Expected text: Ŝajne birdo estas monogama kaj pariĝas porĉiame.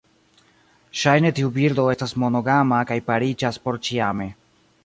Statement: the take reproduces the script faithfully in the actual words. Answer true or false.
false